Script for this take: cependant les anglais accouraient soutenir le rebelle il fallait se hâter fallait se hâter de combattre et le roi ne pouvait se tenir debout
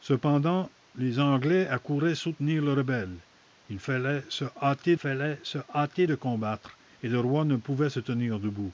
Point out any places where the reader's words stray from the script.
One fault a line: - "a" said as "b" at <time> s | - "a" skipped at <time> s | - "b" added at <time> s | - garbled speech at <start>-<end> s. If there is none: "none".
none